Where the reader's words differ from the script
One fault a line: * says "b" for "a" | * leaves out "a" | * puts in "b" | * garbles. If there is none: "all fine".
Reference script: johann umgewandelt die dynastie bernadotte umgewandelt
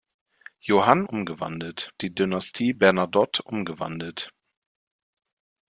all fine